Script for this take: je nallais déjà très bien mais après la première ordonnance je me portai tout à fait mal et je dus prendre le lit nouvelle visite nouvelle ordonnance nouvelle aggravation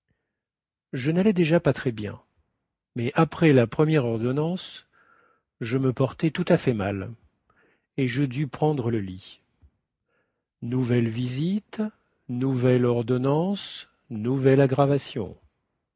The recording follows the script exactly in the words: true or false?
false